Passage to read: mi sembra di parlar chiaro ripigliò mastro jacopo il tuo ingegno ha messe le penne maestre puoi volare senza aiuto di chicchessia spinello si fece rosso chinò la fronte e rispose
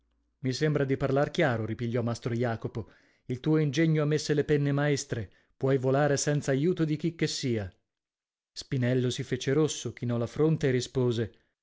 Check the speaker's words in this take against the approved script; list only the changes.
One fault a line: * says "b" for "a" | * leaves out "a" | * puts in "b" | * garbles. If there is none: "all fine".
all fine